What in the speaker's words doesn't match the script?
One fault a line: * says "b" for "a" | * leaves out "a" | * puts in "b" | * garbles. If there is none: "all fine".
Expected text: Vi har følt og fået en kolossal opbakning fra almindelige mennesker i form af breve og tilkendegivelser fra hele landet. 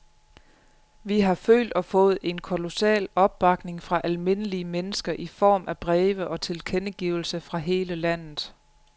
all fine